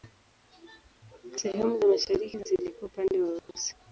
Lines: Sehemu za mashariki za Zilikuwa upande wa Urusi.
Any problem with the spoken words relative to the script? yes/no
no